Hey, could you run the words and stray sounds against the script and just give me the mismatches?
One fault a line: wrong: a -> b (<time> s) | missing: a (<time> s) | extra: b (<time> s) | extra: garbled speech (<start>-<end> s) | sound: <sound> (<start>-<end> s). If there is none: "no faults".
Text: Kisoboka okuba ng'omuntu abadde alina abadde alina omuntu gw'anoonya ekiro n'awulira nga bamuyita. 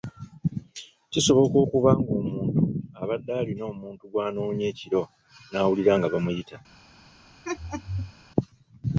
missing: abadde alina (3.6 s)
sound: laugh (7.4-8.1 s)